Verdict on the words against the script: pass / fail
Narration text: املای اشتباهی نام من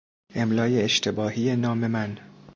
pass